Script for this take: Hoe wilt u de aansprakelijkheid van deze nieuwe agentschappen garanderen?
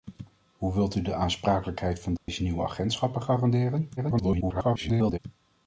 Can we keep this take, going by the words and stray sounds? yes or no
no